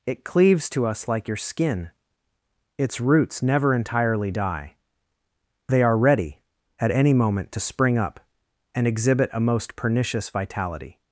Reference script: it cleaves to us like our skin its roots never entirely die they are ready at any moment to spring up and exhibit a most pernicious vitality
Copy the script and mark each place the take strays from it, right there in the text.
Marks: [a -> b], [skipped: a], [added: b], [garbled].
it cleaves to us like [our -> your] skin its roots never entirely die they are ready at any moment to spring up and exhibit a most pernicious vitality